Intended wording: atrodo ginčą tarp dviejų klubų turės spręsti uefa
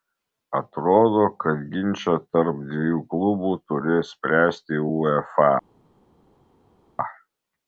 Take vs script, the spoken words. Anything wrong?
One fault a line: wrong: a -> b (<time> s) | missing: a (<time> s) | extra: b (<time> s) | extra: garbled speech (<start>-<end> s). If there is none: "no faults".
extra: kad (1.4 s)